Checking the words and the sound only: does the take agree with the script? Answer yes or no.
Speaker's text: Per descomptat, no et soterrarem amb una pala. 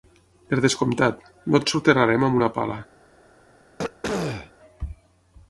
no